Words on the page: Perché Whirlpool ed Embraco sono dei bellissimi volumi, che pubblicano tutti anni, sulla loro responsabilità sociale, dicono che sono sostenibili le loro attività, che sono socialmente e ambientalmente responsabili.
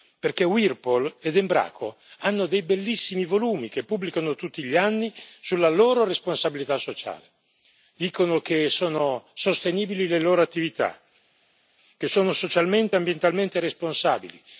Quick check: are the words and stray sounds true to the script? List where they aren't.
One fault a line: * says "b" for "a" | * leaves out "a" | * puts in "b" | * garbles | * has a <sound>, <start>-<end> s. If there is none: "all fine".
* says "hanno" for "sono"
* puts in "gli"